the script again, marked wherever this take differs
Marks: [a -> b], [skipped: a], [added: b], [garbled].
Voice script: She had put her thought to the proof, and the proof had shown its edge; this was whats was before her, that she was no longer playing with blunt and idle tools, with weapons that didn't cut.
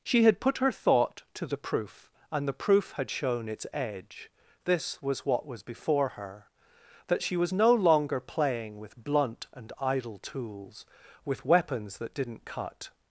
She had put her thought to the proof, and the proof had shown its edge; this was [whats -> what] was before her, that she was no longer playing with blunt and idle tools, with weapons that didn't cut.